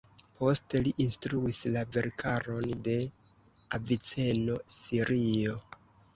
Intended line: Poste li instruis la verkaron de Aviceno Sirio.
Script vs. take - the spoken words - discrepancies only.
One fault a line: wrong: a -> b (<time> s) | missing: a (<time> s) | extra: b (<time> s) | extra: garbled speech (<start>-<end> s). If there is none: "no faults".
no faults